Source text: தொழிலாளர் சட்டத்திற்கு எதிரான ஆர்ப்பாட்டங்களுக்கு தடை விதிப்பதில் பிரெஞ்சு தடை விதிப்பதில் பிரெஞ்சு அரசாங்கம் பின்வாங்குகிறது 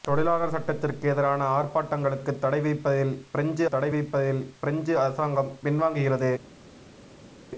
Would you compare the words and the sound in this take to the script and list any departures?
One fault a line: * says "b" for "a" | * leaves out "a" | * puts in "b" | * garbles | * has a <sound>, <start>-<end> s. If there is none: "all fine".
all fine